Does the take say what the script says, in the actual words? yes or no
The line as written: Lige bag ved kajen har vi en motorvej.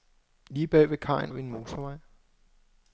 no